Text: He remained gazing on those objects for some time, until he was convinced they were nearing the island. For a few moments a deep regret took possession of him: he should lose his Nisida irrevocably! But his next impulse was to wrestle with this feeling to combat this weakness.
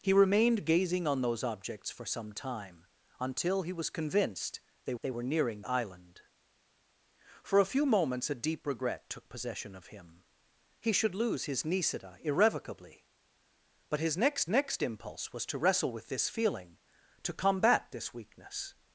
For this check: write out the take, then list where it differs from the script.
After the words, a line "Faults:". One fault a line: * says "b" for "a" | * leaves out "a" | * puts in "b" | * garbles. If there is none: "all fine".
He remained gazing on those objects for some time, until he was convinced they they were nearing island. For a few moments a deep regret took possession of him: he should lose his Nisida irrevocably! But his next next impulse was to wrestle with this feeling to combat this weakness.
Faults:
* puts in "they"
* leaves out "the"
* puts in "next"